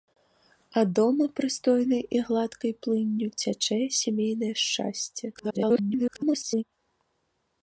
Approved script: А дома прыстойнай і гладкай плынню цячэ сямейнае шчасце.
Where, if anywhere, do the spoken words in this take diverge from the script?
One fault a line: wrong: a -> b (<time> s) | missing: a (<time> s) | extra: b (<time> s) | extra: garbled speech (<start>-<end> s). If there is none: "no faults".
extra: garbled speech (5.3-6.6 s)